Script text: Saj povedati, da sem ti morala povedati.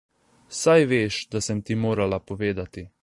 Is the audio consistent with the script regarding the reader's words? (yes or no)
no